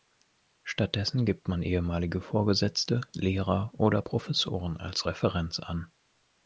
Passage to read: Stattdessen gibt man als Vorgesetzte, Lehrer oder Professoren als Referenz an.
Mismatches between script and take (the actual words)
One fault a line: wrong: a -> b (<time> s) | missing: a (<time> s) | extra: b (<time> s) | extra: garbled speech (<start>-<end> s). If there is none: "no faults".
wrong: als -> ehemalige (1.6 s)